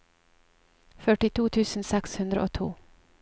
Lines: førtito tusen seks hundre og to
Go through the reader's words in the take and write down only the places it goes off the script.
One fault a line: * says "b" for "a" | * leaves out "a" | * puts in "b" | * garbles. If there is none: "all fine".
all fine